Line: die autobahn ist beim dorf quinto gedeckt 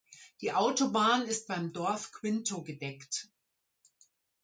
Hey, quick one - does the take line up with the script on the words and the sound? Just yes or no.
yes